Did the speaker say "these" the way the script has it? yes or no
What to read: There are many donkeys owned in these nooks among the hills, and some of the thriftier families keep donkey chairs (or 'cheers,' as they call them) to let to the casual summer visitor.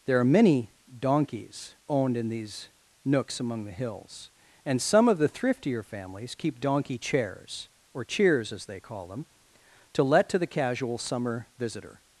yes